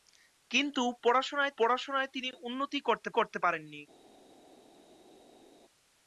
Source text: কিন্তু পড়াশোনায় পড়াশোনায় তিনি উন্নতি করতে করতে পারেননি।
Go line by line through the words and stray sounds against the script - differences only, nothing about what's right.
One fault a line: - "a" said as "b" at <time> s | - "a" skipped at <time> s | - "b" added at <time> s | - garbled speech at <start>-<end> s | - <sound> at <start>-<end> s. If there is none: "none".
none